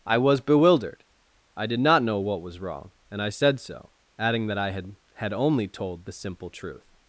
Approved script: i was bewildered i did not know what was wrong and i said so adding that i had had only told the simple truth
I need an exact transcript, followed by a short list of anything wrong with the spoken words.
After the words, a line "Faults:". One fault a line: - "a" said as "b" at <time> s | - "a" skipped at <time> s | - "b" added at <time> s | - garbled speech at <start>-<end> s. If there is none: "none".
i was bewildered i did not know what was wrong and i said so adding that i had had only told the simple truth
Faults:
none